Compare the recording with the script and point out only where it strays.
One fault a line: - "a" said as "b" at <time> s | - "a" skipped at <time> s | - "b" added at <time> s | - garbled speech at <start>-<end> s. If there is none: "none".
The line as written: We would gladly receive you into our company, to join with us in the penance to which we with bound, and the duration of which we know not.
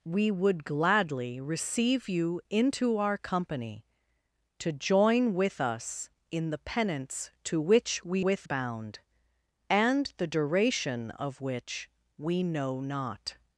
none